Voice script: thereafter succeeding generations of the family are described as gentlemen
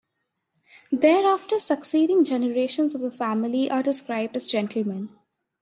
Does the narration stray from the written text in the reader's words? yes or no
no